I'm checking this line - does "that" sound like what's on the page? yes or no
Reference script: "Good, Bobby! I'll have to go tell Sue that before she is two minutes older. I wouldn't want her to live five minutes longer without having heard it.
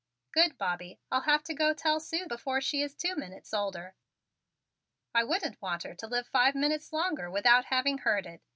no